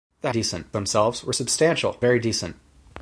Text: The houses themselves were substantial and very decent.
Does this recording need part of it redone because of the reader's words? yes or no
yes